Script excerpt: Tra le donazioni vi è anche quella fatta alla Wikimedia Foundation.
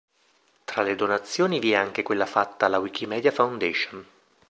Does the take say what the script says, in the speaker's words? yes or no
yes